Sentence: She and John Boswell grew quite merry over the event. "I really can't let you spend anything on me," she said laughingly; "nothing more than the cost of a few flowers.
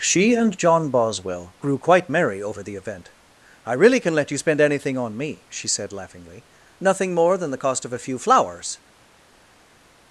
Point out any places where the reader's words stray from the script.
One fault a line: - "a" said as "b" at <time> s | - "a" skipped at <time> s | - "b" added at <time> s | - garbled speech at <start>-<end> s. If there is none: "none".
- "can't" said as "can" at 4.0 s